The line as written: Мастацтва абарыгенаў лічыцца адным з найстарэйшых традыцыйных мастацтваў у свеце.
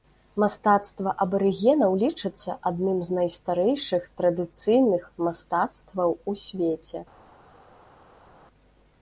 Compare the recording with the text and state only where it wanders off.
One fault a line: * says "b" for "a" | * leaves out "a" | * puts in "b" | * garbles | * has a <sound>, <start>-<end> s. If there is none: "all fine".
all fine